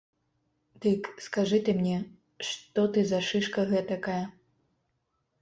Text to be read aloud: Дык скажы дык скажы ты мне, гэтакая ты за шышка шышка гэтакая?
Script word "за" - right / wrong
right